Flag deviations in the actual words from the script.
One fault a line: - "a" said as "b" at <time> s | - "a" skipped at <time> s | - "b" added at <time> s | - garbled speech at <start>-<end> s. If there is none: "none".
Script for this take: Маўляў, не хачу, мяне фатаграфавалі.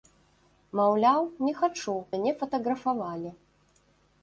none